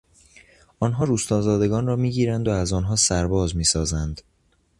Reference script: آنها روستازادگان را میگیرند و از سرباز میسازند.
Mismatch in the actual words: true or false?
true